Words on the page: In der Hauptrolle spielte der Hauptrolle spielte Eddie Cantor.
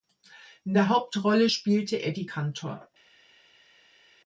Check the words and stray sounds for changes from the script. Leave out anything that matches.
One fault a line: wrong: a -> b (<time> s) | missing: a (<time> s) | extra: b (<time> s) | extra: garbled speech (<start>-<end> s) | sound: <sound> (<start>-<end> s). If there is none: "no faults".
missing: der Hauptrolle spielte (2.0 s)